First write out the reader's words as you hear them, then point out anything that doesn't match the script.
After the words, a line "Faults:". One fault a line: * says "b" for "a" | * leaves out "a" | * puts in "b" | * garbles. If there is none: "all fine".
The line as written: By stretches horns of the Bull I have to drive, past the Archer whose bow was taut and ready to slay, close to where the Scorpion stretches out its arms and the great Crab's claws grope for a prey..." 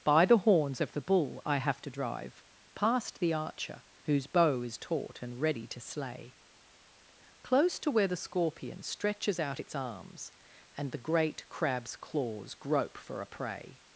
By the horns of the Bull I have to drive, past the Archer whose bow is taut and ready to slay, close to where the Scorpion stretches out its arms and the great Crab's claws grope for a prey..."
Faults:
* says "the" for "stretches"
* says "is" for "was"